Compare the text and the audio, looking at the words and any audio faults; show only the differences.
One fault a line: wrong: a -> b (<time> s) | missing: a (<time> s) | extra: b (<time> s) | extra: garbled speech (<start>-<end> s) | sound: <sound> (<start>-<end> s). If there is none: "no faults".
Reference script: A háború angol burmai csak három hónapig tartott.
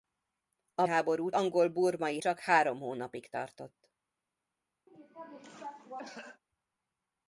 sound: cough (4.9-6.4 s)